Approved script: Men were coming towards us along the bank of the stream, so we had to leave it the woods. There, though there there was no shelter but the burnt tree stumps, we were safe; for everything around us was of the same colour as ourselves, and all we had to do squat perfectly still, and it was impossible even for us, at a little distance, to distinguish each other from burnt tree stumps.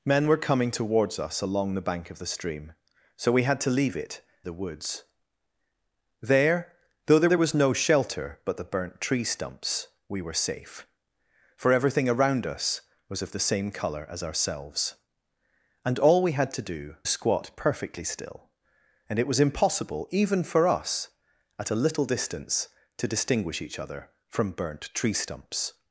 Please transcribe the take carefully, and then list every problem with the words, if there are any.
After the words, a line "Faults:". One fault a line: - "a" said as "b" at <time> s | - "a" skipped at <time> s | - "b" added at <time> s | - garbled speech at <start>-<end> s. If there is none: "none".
Men were coming towards us along the bank of the stream, so we had to leave it the woods. There, though there there was no shelter but the burnt tree stumps, we were safe; for everything around us was of the same colour as ourselves, and all we had to do squat perfectly still, and it was impossible even for us, at a little distance, to distinguish each other from burnt tree stumps.
Faults:
none